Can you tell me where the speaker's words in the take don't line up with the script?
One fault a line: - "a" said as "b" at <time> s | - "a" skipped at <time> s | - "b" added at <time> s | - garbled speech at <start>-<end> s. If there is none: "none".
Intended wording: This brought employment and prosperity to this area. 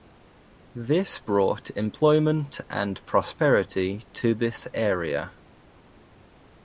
none